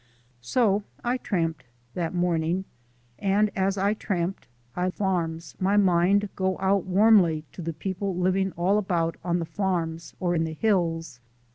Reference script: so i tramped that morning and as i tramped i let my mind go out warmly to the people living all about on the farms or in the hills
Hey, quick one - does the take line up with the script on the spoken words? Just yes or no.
no